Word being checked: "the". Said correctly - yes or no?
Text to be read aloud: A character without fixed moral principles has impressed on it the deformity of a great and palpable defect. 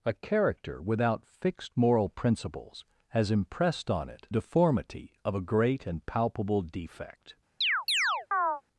no